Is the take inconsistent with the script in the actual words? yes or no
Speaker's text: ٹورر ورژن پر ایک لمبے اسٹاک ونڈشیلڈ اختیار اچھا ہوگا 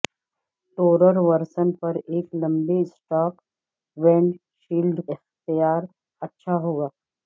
no